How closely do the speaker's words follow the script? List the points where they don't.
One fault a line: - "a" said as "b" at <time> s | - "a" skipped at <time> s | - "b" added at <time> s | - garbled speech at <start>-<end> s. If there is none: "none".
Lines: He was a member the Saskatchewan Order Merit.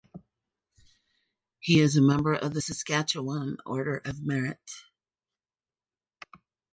- "was" said as "is" at 1.8 s
- "of" added at 2.3 s
- "of" added at 4.0 s